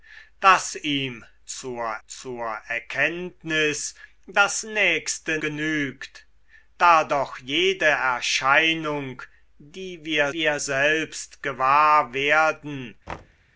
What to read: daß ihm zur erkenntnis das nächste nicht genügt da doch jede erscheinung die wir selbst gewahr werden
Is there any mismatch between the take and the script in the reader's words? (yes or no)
yes